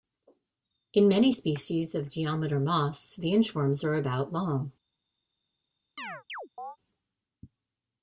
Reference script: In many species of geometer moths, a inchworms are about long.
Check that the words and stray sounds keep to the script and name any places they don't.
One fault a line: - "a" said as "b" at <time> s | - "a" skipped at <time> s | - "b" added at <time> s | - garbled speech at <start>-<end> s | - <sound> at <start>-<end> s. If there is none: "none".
- "a" said as "the" at 3.2 s
- chirp at 6.0-6.8 s